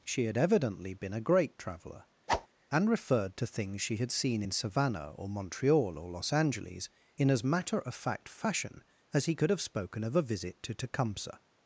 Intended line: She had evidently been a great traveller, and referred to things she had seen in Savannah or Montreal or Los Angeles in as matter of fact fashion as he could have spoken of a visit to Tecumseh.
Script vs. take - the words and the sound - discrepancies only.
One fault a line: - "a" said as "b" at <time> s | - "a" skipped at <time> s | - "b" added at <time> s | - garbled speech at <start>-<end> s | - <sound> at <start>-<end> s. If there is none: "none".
- whoosh at 2.3-2.5 s